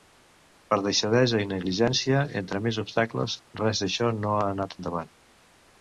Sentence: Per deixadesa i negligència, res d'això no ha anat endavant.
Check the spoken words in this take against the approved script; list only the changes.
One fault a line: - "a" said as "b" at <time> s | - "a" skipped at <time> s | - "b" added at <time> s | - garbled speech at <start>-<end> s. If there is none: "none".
- "entre més obstacles" added at 2.4 s